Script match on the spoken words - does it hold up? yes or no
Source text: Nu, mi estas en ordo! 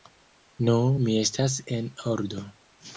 yes